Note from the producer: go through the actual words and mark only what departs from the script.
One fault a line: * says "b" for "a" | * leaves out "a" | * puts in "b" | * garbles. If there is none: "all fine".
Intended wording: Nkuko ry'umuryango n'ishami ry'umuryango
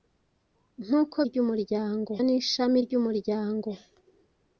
all fine